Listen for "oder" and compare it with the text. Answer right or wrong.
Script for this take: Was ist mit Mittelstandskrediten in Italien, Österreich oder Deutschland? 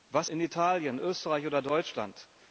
right